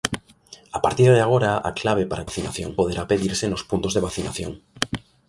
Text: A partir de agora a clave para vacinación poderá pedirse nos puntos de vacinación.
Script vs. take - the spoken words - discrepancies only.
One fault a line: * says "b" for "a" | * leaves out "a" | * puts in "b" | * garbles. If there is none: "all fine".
all fine